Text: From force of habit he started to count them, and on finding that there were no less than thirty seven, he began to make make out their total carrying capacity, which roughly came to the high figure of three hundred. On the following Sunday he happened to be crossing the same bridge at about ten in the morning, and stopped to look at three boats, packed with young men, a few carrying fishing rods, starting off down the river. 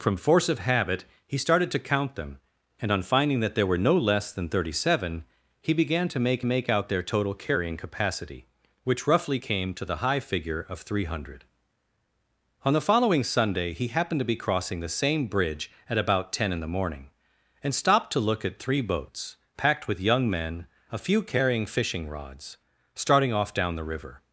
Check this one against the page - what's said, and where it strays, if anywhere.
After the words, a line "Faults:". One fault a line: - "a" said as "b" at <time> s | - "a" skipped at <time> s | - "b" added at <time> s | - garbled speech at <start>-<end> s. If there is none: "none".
From force of habit he started to count them, and on finding that there were no less than thirty seven, he began to make make out their total carrying capacity, which roughly came to the high figure of three hundred. On the following Sunday he happened to be crossing the same bridge at about ten in the morning, and stopped to look at three boats, packed with young men, a few carrying fishing rods, starting off down the river.
Faults:
none